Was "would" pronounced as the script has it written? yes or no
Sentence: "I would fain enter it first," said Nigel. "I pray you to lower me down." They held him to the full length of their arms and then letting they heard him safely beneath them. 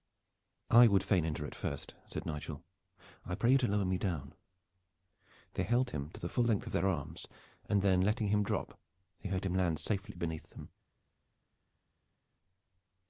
yes